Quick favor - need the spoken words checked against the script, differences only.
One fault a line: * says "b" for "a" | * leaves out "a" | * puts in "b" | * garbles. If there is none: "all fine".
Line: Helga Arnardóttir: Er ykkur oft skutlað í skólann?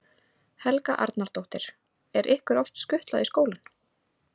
all fine